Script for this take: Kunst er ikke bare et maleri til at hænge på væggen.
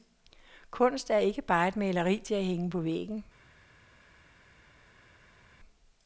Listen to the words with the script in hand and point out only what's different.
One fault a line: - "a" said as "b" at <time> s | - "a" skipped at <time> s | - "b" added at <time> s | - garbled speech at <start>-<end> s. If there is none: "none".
none